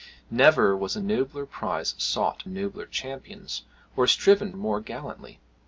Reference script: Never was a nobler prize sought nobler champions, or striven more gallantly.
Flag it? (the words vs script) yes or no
no